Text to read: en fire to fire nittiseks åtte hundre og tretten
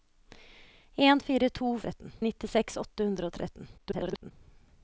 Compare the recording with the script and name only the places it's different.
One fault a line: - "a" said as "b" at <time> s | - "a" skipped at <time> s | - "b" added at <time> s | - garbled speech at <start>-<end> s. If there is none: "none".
- "fire" said as "tretten" at 1.8 s
- garbled speech at 3.8-4.3 s